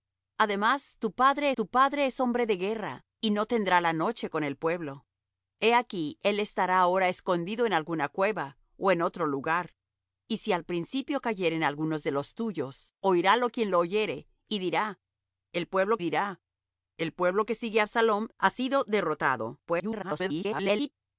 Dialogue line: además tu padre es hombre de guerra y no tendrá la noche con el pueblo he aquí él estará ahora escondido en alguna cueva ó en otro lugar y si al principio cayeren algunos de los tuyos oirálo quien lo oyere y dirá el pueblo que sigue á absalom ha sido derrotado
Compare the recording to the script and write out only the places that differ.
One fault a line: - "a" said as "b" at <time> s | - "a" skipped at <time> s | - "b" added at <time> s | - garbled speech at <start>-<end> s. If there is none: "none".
- "tu padre" added at 1.5 s
- "dirá el pueblo" added at 16.0 s
- garbled speech at 19.7-20.9 s